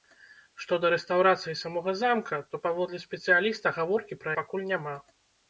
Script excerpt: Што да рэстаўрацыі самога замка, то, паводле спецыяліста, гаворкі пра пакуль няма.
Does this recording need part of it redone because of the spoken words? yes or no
no